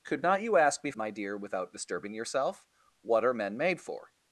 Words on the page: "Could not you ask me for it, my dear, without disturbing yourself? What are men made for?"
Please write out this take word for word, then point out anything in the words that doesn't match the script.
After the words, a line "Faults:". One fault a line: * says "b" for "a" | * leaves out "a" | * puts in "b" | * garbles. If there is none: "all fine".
"Could not you ask me my dear, without disturbing yourself? What are men made for?"
Faults:
* leaves out "for it"